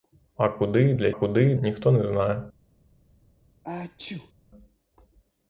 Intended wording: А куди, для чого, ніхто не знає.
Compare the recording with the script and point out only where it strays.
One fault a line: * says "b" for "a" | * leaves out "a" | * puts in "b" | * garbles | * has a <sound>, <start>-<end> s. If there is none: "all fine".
* says "куди" for "чого"
* has a sneeze, 3.6-4.3 s